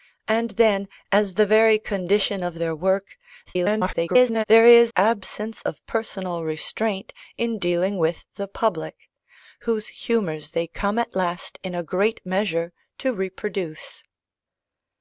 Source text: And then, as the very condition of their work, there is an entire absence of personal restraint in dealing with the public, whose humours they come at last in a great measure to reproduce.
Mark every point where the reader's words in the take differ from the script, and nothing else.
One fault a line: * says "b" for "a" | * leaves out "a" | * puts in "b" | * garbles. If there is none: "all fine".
* garbles
* leaves out "an entire"